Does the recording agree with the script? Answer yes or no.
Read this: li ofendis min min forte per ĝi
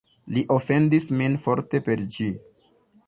no